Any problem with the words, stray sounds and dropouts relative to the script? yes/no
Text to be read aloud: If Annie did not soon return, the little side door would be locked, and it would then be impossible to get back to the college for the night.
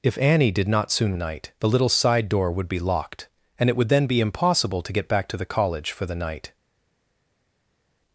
yes